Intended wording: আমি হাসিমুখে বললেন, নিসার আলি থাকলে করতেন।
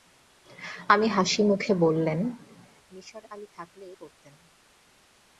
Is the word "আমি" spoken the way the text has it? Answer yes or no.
yes